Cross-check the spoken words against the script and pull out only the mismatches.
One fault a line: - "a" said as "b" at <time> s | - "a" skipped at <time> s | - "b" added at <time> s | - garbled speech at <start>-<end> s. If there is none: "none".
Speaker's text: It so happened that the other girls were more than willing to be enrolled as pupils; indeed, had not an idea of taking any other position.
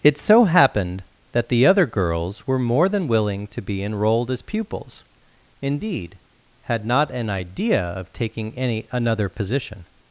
- "other" said as "another" at 8.9 s